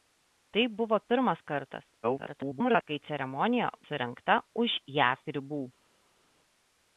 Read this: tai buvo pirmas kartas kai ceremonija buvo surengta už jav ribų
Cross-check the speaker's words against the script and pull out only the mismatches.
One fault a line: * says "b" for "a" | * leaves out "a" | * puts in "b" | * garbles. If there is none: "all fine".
* garbles
* leaves out "buvo"